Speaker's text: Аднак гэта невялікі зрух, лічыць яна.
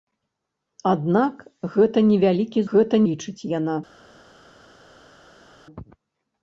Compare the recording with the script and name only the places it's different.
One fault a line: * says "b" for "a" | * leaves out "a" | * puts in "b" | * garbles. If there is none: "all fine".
* says "гэта" for "зрух"